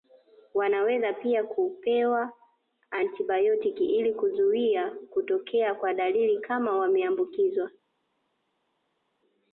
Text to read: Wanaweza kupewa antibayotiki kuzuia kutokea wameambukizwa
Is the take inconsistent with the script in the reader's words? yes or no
yes